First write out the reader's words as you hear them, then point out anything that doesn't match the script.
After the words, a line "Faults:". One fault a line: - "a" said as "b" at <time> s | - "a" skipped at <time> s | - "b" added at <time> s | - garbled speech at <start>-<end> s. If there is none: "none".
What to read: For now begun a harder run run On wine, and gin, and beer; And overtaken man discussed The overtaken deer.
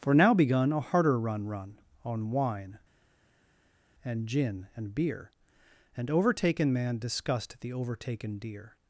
For now begun a harder run run On wine, and gin, and beer; And overtaken man discussed The overtaken deer.
Faults:
none